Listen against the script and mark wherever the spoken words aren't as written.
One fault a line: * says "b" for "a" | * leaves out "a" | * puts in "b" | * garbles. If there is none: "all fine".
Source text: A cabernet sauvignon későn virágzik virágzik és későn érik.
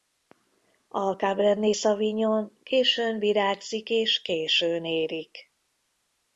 * leaves out "virágzik"